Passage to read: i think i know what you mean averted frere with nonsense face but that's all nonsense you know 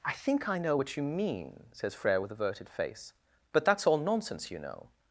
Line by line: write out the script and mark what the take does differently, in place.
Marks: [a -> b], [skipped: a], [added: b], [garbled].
i think i know what you mean [averted -> says] frere with [nonsense -> averted] face but that's all nonsense you know